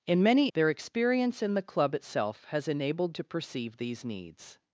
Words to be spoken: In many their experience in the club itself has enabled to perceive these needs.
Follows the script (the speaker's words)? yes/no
yes